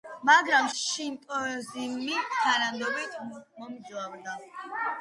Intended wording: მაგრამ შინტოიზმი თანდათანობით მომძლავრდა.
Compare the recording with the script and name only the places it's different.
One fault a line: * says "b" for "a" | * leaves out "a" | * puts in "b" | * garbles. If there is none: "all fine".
all fine